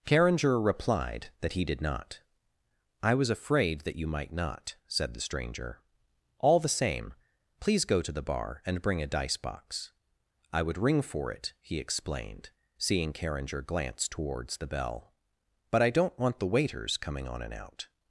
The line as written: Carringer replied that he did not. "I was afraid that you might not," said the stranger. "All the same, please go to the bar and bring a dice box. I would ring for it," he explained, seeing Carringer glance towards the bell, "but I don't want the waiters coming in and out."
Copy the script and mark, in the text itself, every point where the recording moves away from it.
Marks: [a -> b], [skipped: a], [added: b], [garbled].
Carringer replied that he did not. "I was afraid that you might not," said the stranger. "All the same, please go to the bar and bring a dice box. I would ring for it," he explained, seeing Carringer glance towards the bell, "but I don't want the waiters coming [in -> on] and out."